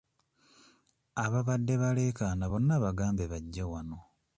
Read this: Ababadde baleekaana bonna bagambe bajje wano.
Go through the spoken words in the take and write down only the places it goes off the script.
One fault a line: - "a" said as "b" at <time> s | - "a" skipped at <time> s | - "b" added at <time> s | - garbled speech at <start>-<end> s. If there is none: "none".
none